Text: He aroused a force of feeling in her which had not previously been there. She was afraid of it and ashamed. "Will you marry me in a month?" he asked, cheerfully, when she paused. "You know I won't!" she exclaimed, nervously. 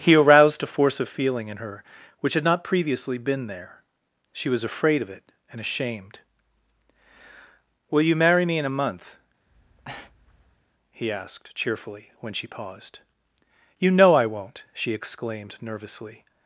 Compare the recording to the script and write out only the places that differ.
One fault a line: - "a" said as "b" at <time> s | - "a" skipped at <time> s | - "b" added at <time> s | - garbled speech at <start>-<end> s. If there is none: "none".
none